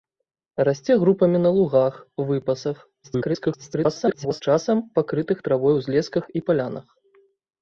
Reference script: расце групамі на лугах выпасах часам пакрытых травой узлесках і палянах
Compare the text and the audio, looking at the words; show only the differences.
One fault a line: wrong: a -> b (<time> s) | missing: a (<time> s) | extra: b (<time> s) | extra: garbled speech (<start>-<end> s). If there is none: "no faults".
extra: garbled speech (3.0-4.4 s)